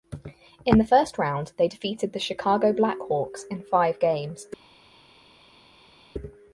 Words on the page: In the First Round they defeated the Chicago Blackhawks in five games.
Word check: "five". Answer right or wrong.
right